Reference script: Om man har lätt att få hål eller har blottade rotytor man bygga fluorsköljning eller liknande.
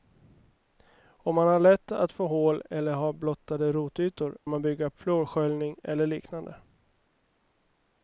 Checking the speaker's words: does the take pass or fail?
pass